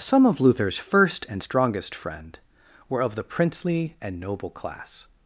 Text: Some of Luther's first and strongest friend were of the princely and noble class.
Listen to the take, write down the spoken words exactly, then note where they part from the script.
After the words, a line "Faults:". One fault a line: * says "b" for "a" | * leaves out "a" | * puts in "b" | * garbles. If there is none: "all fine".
Some of Luther's first and strongest friend were of the princely and noble class.
Faults:
all fine